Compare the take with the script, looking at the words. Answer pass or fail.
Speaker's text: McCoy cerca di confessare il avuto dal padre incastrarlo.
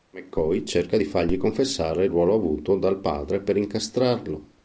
fail